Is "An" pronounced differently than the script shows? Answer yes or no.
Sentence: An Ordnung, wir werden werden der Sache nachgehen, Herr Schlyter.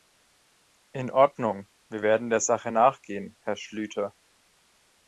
yes